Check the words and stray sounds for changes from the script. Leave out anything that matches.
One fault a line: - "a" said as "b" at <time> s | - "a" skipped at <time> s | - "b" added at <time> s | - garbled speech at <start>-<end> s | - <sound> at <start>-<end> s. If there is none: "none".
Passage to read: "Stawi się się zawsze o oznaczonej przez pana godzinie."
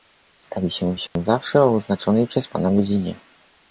- dropout at 1.1-1.2 s